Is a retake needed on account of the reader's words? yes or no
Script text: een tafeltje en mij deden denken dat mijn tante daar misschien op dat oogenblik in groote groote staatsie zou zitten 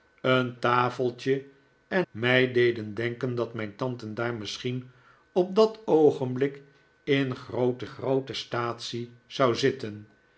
no